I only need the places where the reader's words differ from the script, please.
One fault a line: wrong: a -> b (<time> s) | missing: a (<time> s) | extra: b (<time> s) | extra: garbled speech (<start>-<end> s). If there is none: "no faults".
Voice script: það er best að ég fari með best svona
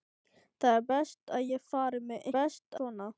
no faults